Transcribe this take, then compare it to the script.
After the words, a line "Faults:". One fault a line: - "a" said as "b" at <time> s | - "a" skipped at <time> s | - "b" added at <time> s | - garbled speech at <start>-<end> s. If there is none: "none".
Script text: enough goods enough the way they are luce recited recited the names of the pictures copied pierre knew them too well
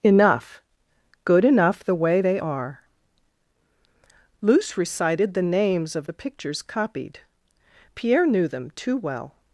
enough good enough the way they are luce recited the names of the pictures copied pierre knew them too well
Faults:
- "goods" said as "good" at 1.2 s
- "recited" skipped at 5.3 s